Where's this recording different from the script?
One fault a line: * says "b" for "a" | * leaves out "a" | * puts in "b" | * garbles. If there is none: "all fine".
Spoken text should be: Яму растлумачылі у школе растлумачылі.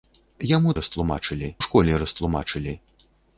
all fine